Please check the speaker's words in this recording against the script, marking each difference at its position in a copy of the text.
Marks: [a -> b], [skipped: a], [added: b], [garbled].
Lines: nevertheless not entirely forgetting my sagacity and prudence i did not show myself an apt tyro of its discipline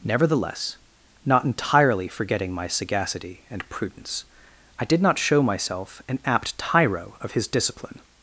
nevertheless not entirely forgetting my sagacity and prudence i did not show myself an apt tyro of [its -> his] discipline